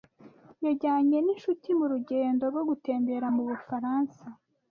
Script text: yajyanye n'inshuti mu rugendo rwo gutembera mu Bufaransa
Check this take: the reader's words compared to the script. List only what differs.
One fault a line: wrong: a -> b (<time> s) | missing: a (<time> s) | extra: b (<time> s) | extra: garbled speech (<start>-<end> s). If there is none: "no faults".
no faults